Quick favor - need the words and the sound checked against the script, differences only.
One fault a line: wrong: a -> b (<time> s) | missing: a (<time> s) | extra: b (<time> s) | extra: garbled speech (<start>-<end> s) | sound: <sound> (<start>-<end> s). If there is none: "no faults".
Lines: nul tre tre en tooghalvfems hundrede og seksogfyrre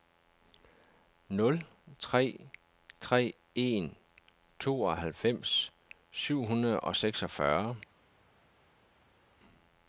extra: syv (6.1 s)